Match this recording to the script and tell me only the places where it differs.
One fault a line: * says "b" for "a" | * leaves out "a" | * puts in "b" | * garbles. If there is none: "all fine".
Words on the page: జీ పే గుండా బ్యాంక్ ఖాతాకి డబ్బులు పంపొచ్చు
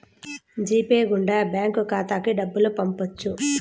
all fine